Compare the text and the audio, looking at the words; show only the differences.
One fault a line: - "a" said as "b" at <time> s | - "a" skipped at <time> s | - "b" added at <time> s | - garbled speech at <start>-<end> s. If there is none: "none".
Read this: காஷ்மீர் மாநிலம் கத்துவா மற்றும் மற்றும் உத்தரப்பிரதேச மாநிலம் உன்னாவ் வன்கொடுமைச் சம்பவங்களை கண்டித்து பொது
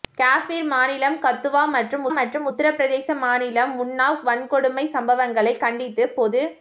none